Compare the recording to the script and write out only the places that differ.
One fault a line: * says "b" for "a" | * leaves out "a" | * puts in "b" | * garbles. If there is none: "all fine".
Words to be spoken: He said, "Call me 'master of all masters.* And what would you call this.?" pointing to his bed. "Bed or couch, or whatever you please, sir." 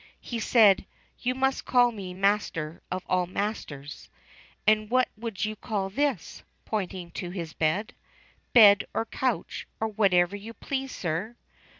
* puts in "You must"